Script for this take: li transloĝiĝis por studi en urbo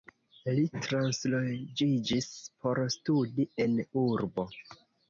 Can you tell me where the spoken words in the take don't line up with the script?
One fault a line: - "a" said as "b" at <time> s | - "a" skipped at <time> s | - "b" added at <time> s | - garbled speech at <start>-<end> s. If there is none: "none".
none